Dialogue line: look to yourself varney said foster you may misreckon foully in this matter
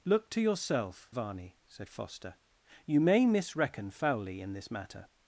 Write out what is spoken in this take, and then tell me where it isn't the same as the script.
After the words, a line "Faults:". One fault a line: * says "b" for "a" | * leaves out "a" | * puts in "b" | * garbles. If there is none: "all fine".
look to yourself varney said foster you may misreckon foully in this matter
Faults:
all fine